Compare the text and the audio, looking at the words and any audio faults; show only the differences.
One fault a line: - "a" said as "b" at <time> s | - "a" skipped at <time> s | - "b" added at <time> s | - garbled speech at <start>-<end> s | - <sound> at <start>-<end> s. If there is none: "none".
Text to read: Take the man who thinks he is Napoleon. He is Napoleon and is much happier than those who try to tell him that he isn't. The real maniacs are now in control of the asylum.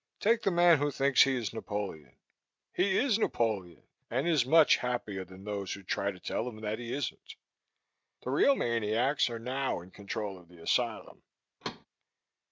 - thud at 11.6-11.9 s